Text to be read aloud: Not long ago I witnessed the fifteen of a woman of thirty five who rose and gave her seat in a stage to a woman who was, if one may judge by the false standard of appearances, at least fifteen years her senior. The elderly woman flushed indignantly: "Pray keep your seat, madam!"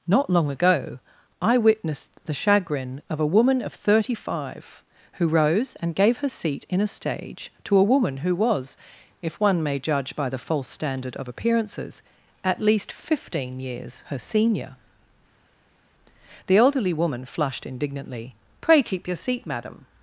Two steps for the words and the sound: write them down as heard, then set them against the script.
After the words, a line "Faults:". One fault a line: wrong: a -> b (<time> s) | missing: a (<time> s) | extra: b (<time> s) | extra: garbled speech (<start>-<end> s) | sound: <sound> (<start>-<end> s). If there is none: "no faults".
Not long ago I witnessed the chagrin of a woman of thirty five who rose and gave her seat in a stage to a woman who was, if one may judge by the false standard of appearances, at least fifteen years her senior. The elderly woman flushed indignantly: "Pray keep your seat, madam!"
Faults:
wrong: fifteen -> chagrin (2.3 s)